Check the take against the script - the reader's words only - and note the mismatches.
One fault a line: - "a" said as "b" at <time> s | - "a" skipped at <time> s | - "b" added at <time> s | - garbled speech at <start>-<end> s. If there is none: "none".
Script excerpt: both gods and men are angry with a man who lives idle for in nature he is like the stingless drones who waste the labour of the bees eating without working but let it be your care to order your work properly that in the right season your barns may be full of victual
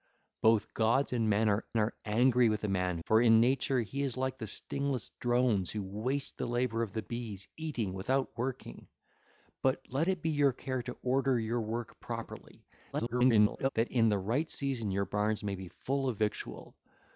- "are" added at 1.8 s
- "who lives idle" skipped at 3.0 s
- garbled speech at 12.9-13.7 s